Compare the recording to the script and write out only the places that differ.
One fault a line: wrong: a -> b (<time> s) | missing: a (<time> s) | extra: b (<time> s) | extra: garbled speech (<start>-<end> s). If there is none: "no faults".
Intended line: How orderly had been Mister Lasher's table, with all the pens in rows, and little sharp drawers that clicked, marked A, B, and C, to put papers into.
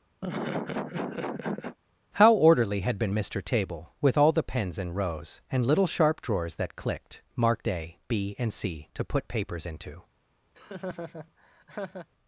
missing: Lasher's (3.4 s)